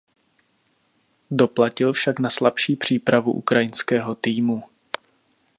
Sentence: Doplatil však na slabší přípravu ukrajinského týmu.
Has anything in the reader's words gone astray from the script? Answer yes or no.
no